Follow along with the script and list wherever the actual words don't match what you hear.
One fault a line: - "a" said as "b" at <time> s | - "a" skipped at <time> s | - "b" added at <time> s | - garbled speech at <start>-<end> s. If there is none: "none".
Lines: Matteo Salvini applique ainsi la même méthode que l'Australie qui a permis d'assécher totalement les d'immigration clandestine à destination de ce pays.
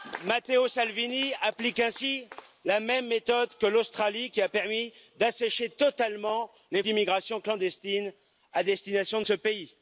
none